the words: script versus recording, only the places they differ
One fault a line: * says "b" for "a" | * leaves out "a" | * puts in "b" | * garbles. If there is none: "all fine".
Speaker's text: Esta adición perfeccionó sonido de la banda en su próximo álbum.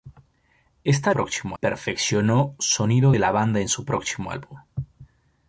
* says "próximo" for "adición"